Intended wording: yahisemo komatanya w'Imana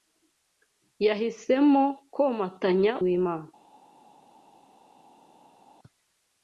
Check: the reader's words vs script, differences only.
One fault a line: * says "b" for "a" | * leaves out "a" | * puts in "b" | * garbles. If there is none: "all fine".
all fine